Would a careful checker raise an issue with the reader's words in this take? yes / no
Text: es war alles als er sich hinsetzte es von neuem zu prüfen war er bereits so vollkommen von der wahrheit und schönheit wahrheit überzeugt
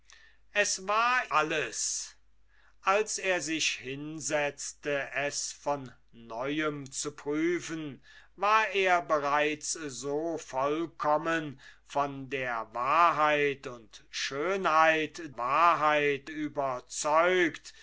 no